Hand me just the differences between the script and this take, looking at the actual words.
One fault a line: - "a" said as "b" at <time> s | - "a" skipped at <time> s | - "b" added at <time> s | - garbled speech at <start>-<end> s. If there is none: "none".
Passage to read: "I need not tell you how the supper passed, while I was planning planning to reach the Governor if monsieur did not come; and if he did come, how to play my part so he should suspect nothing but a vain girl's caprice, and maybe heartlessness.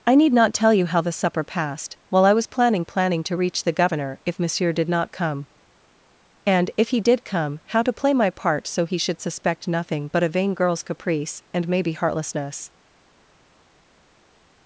none